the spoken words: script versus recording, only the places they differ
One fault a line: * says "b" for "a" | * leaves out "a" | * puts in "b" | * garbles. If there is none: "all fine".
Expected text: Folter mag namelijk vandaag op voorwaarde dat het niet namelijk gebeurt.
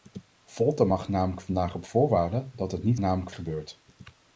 all fine